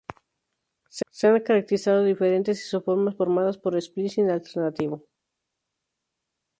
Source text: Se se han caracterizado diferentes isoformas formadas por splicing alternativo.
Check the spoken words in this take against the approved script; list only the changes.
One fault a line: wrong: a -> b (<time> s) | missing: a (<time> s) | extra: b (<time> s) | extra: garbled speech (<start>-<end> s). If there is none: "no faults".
no faults